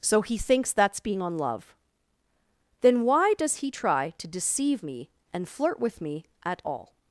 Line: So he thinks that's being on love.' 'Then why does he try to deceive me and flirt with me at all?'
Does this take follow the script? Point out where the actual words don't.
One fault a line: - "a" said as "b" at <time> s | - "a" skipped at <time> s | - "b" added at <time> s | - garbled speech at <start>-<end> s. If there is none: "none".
none